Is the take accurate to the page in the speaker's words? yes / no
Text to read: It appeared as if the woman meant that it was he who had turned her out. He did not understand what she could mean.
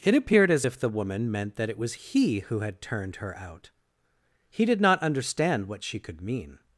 yes